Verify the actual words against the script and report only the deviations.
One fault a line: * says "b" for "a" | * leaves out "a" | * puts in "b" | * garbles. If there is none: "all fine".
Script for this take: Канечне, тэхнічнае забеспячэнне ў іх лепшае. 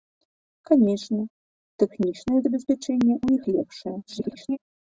* garbles